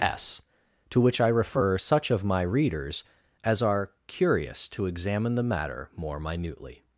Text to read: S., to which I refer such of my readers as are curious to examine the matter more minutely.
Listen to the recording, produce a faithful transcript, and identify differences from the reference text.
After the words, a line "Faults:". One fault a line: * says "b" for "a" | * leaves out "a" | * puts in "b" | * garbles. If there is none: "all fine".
S., to which I refer such of my readers as are curious to examine the matter more minutely.
Faults:
all fine